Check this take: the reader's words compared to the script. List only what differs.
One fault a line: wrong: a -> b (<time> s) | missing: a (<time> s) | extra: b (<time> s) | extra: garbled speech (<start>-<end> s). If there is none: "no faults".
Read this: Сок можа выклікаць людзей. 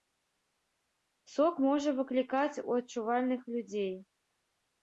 extra: у адчувальных (2.7 s)